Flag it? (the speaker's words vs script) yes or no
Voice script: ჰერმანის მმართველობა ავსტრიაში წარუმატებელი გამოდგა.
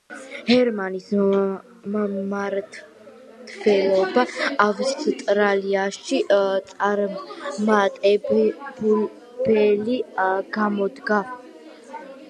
no